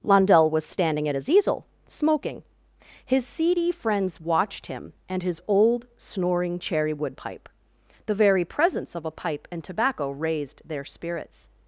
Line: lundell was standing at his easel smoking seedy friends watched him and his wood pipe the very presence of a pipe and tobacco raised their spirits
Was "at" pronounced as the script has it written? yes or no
yes